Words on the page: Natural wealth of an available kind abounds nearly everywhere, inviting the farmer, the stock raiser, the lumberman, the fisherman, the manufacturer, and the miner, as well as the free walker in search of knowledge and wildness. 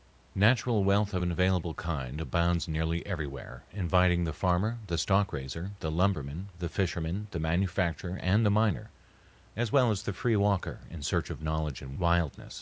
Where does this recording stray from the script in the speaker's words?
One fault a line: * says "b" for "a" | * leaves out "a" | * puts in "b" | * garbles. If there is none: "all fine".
all fine